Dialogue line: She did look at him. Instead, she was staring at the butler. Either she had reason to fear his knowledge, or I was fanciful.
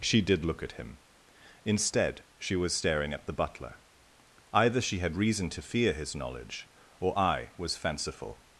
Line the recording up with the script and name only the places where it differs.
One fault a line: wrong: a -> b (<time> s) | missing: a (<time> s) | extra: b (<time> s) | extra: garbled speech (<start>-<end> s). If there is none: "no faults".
no faults